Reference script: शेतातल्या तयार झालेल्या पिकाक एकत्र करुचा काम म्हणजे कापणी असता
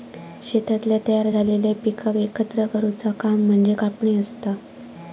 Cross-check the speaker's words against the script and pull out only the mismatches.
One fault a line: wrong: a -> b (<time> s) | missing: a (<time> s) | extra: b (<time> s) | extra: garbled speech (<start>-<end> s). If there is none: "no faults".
no faults